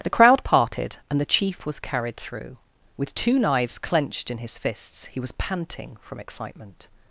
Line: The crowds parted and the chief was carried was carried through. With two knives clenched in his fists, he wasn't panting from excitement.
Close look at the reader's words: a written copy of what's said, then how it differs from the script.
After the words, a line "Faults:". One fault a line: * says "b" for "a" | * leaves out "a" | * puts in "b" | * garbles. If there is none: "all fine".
The crowd parted and the chief was carried through. With two knives clenched in his fists, he was panting from excitement.
Faults:
* says "crowd" for "crowds"
* leaves out "was carried"
* says "was" for "wasn't"